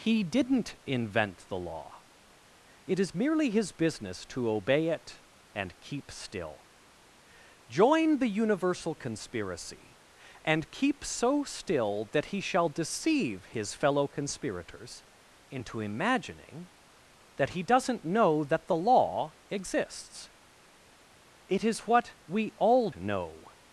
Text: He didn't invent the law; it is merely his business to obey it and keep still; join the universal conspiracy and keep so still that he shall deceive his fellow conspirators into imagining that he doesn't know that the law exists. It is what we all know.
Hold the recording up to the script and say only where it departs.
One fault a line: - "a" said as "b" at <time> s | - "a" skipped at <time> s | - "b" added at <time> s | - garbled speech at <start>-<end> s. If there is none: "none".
none